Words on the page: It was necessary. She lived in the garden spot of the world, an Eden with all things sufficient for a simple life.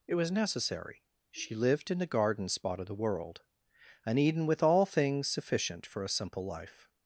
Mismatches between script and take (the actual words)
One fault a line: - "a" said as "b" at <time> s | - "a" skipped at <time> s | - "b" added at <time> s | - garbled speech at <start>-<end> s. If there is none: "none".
none